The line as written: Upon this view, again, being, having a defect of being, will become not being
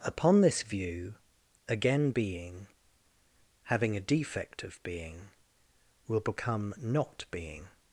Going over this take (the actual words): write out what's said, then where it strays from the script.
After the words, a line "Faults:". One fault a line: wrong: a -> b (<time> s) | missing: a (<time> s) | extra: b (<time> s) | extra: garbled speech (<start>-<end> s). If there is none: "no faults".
Upon this view, again, being, having a defect of being, will become not being
Faults:
no faults